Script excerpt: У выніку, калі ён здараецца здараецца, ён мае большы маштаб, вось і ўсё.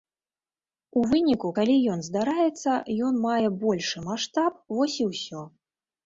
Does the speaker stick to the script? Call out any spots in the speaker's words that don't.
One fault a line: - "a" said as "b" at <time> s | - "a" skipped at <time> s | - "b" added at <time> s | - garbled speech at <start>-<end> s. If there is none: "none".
- "здараецца" skipped at 2.7 s